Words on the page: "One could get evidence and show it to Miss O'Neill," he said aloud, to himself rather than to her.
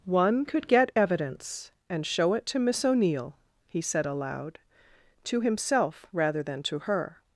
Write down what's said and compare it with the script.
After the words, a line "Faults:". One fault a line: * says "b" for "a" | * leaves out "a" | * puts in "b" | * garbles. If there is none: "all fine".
"One could get evidence and show it to Miss O'Neill," he said aloud, to himself rather than to her.
Faults:
all fine